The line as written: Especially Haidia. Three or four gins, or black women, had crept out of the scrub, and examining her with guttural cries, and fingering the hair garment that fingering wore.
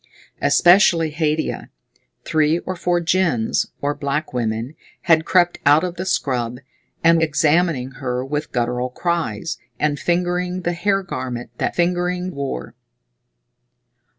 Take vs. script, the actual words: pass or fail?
pass